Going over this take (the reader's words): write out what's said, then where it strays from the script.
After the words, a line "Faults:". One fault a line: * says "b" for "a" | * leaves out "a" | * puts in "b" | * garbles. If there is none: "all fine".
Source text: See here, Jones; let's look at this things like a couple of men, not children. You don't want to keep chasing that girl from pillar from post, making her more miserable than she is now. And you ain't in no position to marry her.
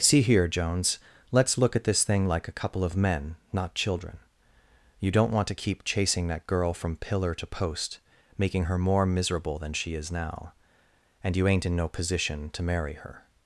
See here, Jones; let's look at this thing like a couple of men, not children. You don't want to keep chasing that girl from pillar to post, making her more miserable than she is now. And you ain't in no position to marry her.
Faults:
* says "thing" for "things"
* says "to" for "from"